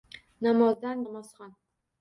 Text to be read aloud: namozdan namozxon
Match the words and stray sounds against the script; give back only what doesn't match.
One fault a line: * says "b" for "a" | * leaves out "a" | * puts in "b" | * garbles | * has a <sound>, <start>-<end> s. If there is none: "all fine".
all fine